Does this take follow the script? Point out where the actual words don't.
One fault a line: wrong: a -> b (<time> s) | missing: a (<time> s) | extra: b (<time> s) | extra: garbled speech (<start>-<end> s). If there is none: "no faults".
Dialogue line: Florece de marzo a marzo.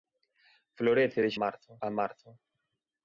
no faults